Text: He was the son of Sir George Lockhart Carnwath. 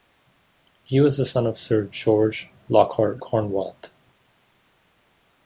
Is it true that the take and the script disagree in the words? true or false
false